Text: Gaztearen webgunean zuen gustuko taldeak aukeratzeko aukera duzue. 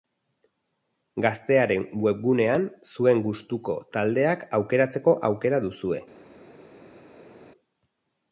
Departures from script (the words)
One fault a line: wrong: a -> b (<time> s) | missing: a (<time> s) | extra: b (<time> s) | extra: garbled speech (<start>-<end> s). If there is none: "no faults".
no faults